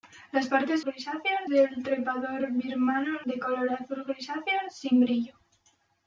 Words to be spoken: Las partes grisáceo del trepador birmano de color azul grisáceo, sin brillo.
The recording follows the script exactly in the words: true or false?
true